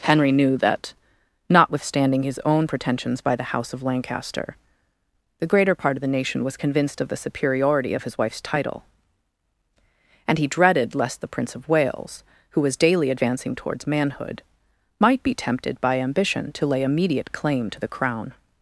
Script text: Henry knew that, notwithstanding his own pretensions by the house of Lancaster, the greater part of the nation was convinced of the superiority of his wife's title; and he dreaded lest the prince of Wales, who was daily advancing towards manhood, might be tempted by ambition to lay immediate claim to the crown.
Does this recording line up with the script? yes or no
yes